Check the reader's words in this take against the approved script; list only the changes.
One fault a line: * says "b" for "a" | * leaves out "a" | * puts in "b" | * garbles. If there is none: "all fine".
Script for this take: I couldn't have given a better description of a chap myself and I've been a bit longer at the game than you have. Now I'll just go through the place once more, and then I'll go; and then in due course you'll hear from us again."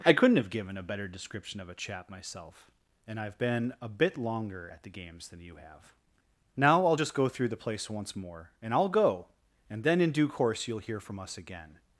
* says "games" for "game"
* leaves out "then"